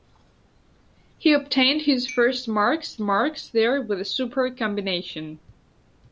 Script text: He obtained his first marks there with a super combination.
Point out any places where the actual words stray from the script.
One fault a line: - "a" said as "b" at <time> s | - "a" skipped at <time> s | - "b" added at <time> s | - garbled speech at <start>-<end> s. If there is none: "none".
- "marks" added at 3.0 s